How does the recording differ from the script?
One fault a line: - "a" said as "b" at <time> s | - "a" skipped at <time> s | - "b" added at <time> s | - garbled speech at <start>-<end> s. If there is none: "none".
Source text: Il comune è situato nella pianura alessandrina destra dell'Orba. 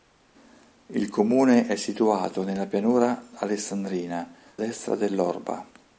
none